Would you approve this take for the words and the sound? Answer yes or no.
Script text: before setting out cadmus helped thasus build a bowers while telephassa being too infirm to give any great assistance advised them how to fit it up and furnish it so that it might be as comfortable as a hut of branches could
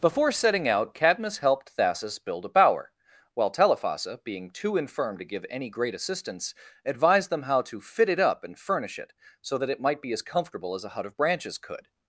no